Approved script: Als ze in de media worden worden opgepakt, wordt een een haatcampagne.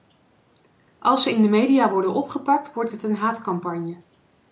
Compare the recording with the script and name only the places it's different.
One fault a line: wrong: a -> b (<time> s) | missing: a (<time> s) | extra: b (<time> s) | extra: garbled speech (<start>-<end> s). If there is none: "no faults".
missing: worden (2.1 s)
wrong: een -> het (2.9 s)